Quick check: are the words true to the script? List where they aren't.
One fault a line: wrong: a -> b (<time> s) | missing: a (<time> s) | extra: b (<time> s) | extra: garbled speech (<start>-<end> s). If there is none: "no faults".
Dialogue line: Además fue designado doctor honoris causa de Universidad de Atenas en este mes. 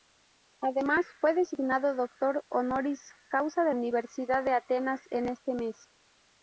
no faults